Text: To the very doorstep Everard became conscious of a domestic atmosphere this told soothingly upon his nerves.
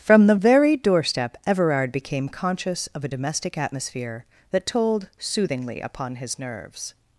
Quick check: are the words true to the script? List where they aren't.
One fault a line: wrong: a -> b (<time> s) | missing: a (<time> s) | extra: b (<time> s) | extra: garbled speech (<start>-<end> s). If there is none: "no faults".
wrong: To -> From (0.0 s)
wrong: this -> that (4.5 s)